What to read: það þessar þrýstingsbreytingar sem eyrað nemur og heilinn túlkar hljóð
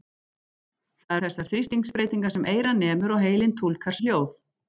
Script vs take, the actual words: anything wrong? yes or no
no